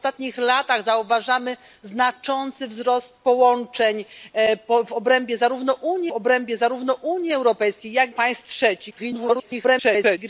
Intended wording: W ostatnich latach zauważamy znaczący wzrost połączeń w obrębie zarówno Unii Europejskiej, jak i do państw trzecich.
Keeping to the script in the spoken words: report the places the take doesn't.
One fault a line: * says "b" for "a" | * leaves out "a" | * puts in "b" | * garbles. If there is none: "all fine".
* puts in "obrębie zarówno Unii"
* leaves out "i do"
* garbles